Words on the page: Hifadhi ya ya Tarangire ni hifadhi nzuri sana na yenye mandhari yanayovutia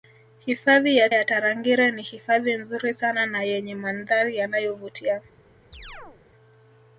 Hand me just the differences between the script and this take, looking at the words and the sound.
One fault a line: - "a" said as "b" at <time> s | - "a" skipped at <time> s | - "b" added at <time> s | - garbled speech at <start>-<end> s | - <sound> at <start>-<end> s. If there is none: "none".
- chirp at 5.7-6.2 s